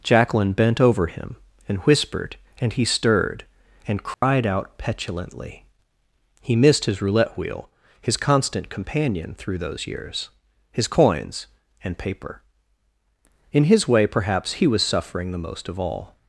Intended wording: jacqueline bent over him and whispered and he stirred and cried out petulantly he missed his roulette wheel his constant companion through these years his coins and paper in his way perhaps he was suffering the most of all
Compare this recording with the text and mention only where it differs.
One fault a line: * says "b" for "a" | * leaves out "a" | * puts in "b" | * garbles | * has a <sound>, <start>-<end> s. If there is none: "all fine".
* has a dropout, 4.1-4.2 s
* says "those" for "these"